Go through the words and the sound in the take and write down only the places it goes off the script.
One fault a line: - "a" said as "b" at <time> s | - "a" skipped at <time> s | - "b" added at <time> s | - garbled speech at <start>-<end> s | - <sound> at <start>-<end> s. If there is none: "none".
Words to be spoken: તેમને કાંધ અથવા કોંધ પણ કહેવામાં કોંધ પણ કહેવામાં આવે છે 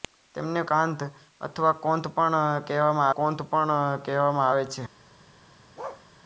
- bark at 5.8-6.1 s